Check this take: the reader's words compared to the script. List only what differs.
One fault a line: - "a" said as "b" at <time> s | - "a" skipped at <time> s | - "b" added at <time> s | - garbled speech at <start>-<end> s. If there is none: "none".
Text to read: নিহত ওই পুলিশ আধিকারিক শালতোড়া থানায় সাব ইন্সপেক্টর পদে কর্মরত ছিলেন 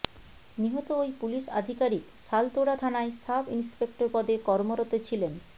none